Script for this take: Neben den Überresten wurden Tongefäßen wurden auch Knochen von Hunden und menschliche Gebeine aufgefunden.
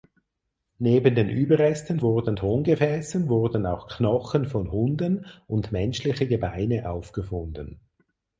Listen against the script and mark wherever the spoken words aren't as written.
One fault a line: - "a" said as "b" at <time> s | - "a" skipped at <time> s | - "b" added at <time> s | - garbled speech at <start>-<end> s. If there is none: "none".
none